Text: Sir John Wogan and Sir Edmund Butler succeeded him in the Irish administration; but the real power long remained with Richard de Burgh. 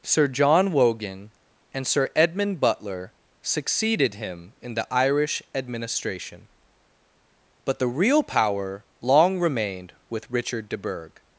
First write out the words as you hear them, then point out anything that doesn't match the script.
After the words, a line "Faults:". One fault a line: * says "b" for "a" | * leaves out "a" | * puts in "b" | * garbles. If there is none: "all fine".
Sir John Wogan and Sir Edmund Butler succeeded him in the Irish administration; but the real power long remained with Richard de Burgh.
Faults:
all fine